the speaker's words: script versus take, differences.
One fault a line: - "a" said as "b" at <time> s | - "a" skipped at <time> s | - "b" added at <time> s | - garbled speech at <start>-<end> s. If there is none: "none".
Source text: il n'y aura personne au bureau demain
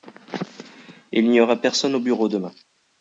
none